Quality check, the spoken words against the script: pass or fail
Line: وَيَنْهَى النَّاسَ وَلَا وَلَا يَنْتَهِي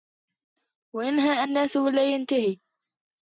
fail